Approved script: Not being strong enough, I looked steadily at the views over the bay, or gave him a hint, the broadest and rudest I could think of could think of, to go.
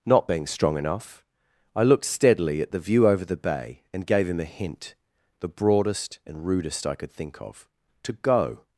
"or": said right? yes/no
no